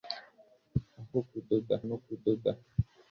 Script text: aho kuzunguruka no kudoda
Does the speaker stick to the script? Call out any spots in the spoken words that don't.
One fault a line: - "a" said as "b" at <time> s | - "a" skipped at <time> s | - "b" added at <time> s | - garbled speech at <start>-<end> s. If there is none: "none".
- "kuzunguruka" said as "kudoda" at 1.3 s